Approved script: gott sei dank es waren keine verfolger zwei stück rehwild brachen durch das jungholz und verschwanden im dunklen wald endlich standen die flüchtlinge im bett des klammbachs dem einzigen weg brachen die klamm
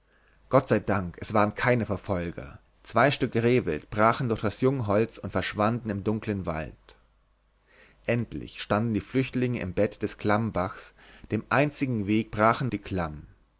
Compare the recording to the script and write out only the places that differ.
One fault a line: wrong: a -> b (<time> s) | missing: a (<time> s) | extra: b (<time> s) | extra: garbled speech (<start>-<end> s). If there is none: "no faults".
no faults